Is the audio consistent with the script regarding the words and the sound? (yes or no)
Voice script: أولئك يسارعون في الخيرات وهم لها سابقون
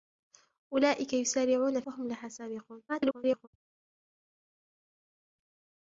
no